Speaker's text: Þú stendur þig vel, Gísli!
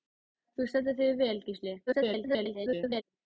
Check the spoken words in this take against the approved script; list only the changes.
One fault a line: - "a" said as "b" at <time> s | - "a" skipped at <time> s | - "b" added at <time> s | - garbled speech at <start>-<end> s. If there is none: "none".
- garbled speech at 1.9-3.0 s